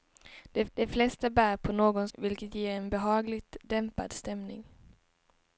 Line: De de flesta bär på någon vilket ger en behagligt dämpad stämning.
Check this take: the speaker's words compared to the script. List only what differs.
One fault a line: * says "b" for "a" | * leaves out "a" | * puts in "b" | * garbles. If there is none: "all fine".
all fine